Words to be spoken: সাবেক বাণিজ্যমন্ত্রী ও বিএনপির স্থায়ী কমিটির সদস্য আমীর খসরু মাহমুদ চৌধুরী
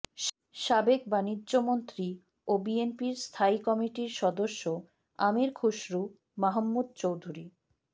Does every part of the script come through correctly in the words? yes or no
yes